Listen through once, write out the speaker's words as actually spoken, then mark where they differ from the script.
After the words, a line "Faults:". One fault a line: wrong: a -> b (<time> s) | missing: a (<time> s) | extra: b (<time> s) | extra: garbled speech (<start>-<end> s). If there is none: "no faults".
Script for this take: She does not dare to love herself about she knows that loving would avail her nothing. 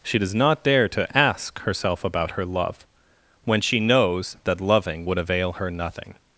She does not dare to ask herself about her love, when she knows that loving would avail her nothing.
Faults:
wrong: love -> ask (1.2 s)
extra: her love when (2.3 s)